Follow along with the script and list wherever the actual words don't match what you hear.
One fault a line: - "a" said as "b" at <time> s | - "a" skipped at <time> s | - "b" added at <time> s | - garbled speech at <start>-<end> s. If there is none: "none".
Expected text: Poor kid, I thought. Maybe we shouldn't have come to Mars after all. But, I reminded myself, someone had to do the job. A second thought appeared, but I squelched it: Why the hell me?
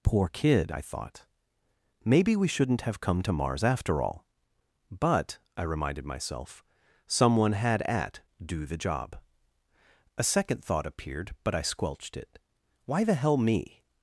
- "to" said as "at" at 7.8 s